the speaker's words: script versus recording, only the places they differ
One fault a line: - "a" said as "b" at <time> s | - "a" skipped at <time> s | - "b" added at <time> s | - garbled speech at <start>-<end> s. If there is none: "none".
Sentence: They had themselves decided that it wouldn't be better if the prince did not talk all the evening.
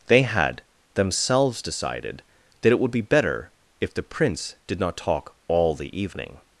- "wouldn't" said as "would" at 2.8 s